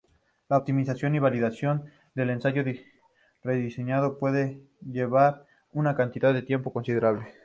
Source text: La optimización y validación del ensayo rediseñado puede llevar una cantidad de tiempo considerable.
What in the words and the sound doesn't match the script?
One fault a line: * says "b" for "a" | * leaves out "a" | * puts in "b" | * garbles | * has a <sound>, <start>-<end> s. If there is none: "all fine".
all fine